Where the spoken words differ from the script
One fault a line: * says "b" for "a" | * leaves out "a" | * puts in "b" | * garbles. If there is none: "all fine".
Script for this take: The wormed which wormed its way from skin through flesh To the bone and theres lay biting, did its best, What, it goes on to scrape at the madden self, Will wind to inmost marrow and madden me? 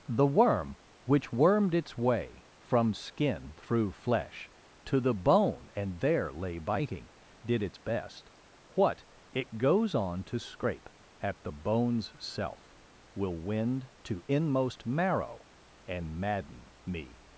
* says "worm" for "wormed"
* says "there" for "theres"
* says "bone's" for "madden"